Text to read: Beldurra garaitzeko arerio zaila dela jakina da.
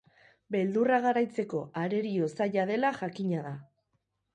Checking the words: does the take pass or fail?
pass